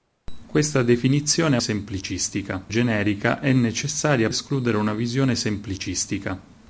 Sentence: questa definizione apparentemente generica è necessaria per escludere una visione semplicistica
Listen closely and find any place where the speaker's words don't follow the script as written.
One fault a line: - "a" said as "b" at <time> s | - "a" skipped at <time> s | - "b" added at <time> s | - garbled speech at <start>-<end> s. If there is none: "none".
- "apparentemente" said as "semplicistica" at 1.6 s
- "per" skipped at 4.3 s